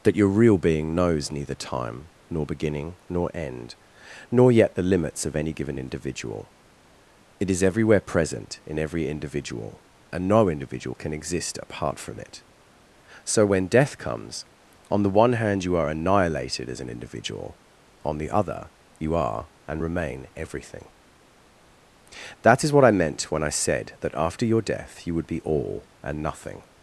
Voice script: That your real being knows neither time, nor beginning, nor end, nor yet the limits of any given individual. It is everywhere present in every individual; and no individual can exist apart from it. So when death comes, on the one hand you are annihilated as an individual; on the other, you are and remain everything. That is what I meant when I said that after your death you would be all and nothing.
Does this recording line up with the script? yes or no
yes